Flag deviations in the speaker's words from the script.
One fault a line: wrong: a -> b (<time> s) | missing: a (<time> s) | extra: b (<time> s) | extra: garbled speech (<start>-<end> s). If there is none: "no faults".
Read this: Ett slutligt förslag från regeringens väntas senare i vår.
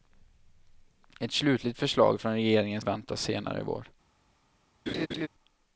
no faults